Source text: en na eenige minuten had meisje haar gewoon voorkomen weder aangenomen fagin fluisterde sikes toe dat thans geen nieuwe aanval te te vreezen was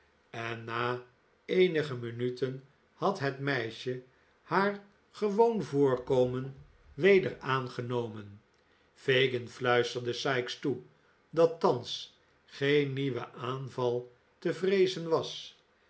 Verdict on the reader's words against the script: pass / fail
fail